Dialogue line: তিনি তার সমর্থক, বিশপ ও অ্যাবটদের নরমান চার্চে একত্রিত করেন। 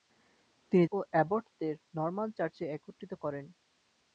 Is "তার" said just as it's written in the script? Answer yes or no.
no